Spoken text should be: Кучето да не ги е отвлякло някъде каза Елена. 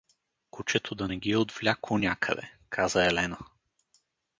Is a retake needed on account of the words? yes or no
no